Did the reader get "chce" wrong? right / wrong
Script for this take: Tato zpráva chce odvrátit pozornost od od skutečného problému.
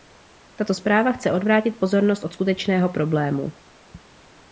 right